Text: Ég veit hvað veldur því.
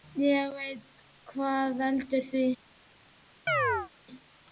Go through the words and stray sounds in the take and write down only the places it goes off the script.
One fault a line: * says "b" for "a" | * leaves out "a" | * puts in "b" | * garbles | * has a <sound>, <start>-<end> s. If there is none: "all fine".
* has a chirp, 3.5-3.9 s